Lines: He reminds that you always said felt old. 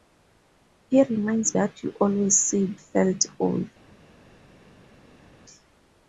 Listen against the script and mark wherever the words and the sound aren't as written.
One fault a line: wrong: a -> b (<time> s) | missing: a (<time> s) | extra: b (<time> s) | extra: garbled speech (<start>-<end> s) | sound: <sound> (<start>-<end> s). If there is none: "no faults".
no faults